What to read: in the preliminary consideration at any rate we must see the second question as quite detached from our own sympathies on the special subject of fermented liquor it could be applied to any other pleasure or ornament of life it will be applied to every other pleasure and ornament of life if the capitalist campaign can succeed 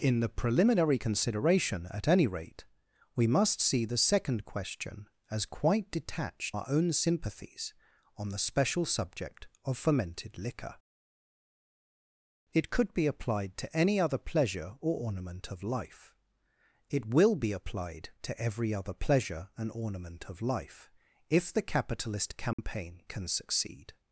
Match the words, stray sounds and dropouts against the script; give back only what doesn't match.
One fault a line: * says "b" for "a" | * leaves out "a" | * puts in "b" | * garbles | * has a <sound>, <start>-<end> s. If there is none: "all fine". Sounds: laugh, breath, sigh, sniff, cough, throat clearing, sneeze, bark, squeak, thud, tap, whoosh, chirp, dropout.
* leaves out "from"
* has a dropout, 22.5-22.6 s